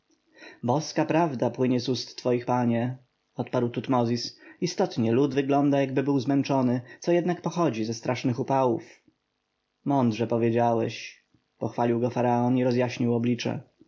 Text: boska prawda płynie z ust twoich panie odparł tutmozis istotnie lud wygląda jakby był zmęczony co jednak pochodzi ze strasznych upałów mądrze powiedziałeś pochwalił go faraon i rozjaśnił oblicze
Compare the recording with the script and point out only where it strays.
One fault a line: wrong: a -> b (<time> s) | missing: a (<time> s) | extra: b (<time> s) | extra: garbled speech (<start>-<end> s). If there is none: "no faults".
no faults